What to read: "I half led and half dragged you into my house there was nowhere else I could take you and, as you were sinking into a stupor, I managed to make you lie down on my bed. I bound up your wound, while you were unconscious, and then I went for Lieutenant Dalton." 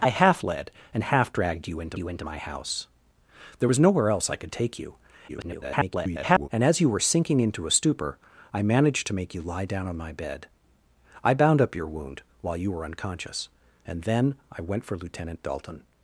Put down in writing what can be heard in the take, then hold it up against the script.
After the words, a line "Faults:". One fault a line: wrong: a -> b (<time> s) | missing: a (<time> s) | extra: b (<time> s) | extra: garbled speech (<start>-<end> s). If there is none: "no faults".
"I half led and half dragged you into you into my house there was nowhere else I could take you [garbled] and, as you were sinking into a stupor, I managed to make you lie down on my bed. I bound up your wound, while you were unconscious, and then I went for Lieutenant Dalton."
Faults:
extra: you into (2.0 s)
extra: garbled speech (5.3-6.5 s)